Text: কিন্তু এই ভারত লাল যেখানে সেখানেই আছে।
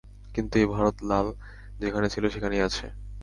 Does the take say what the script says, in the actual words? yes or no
no